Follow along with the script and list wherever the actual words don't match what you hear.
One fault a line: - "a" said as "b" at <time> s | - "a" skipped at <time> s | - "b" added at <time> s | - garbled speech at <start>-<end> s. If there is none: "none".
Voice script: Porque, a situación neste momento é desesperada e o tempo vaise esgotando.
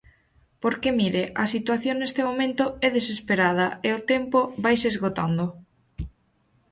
- "mire" added at 1.0 s